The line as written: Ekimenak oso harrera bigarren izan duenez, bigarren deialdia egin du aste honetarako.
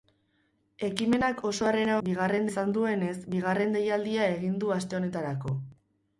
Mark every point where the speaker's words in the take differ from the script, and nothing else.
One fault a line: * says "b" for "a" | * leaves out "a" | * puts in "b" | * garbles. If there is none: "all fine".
all fine